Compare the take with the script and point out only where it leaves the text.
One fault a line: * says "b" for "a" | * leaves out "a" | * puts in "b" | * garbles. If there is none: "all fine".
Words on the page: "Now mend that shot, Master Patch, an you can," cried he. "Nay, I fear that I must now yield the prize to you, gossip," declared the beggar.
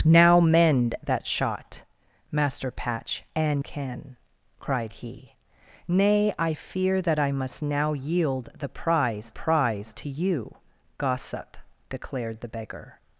* leaves out "you"
* puts in "prize"